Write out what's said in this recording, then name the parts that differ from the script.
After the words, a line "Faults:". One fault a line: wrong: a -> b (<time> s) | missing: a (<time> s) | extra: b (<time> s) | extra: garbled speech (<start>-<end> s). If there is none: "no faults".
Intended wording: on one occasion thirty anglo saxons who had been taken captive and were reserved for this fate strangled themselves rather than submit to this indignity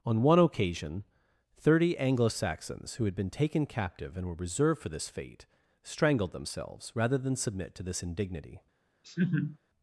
on one occasion thirty anglo saxons who had been taken captive and were reserved for this fate strangled themselves rather than submit to this indignity
Faults:
no faults